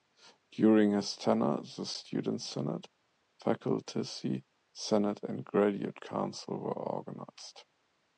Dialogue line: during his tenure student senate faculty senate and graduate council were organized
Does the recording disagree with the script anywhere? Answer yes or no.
yes